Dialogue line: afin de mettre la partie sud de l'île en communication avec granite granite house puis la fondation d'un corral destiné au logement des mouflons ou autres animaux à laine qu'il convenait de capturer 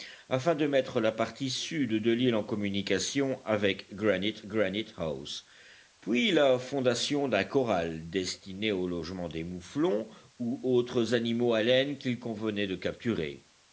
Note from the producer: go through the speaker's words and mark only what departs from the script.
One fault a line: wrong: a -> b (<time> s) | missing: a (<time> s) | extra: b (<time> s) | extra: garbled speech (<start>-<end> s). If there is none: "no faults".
no faults